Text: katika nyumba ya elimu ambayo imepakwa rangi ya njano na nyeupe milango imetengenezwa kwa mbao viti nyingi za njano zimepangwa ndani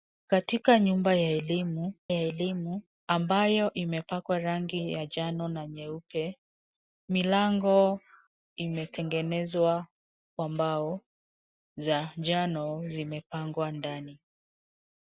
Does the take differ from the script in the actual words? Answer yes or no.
yes